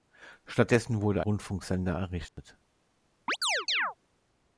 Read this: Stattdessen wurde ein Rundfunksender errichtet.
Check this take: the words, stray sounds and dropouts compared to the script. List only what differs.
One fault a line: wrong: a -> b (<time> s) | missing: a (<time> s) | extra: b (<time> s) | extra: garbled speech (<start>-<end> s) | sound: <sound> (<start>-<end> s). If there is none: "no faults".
missing: ein (1.2 s)
sound: dropout (2.3-2.4 s)
sound: chirp (3.3-3.9 s)